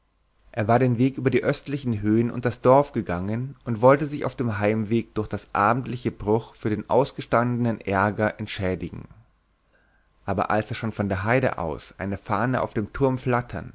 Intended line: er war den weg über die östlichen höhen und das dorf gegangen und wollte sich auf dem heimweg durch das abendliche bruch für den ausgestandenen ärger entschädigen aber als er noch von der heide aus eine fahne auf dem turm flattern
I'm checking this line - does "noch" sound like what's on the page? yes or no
no